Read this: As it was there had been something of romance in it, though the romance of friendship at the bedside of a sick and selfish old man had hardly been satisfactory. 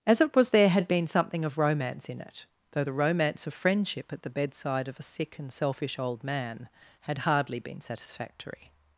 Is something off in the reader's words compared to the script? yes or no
no